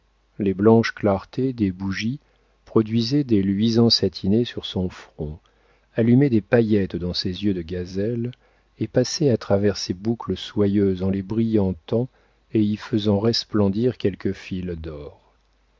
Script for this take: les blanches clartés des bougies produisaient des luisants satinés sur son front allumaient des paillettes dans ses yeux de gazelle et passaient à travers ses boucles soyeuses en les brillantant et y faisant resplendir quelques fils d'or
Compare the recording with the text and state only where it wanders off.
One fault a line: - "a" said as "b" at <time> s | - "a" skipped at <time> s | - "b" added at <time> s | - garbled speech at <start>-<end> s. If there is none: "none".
none